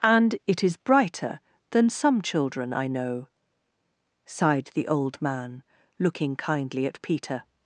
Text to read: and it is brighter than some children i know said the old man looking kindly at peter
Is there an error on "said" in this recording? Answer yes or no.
yes